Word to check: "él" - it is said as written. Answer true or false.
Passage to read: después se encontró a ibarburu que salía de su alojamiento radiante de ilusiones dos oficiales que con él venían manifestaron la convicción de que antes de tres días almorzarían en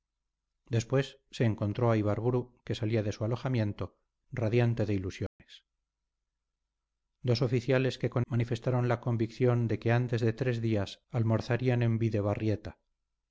false